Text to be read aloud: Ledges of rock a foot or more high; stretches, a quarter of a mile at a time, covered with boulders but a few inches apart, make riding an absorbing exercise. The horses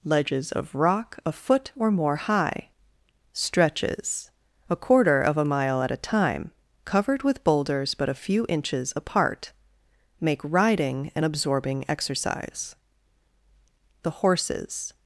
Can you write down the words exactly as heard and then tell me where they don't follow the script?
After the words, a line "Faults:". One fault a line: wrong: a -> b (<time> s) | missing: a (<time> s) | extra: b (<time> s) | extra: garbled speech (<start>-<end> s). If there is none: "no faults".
Ledges of rock a foot or more high; stretches, a quarter of a mile at a time, covered with boulders but a few inches apart, make riding an absorbing exercise. The horses
Faults:
no faults